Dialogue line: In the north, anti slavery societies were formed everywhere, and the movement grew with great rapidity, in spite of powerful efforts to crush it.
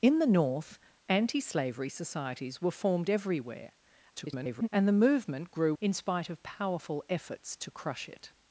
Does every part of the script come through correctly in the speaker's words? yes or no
no